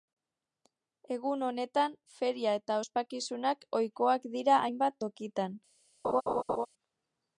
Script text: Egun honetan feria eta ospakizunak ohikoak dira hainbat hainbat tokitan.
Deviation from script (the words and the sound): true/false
true